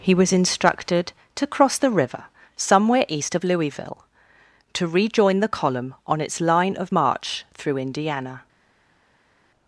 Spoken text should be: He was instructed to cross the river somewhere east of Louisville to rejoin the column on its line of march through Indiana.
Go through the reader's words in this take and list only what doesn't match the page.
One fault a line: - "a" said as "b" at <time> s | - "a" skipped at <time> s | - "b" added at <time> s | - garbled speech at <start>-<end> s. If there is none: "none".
none